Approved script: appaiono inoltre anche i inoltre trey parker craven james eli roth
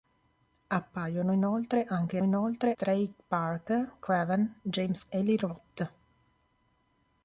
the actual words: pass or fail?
pass